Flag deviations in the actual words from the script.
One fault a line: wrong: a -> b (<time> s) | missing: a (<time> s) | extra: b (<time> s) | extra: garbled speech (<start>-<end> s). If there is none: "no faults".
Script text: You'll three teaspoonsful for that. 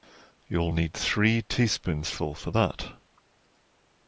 extra: need (0.7 s)